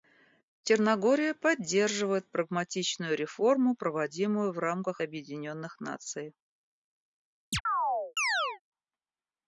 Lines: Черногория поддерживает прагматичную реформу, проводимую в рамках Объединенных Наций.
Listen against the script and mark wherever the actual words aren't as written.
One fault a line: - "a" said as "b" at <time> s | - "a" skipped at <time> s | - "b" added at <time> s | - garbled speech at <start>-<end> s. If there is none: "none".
none